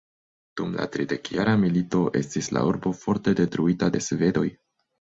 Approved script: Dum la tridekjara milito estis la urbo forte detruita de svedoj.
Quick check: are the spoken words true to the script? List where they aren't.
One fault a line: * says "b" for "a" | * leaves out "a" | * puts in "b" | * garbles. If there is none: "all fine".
all fine